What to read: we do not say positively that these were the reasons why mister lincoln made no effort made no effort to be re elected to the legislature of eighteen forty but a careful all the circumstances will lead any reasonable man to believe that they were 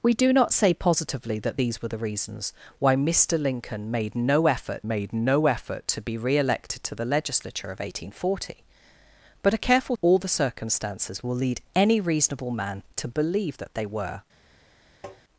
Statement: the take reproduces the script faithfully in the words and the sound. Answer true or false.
false